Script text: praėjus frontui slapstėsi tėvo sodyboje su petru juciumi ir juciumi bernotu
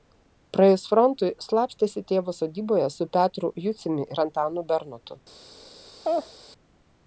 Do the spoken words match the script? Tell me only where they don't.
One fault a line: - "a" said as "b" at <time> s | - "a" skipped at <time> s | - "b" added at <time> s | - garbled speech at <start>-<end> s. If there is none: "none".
- "juciumi" said as "antanu" at 4.3 s